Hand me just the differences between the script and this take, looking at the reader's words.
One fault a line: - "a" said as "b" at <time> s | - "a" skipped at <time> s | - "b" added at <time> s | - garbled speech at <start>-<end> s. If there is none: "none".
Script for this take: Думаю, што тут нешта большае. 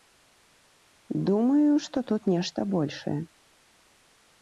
none